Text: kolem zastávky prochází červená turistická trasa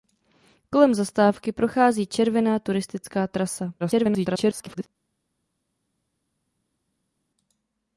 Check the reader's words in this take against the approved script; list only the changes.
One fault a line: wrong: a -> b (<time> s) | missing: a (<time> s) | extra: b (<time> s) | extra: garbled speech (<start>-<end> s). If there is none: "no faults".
extra: garbled speech (3.8-4.9 s)